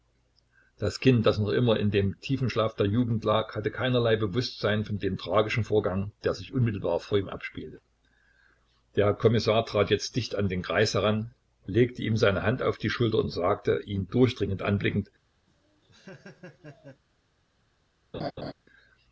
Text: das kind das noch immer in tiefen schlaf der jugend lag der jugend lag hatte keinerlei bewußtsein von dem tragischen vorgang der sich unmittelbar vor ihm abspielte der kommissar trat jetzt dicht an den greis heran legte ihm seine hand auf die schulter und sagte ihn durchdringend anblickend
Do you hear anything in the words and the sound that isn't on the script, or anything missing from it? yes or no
yes